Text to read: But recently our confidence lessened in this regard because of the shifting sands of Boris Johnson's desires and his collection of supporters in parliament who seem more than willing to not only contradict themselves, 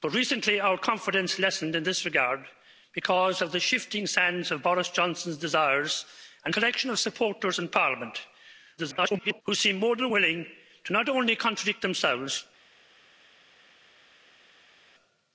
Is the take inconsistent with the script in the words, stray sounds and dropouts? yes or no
yes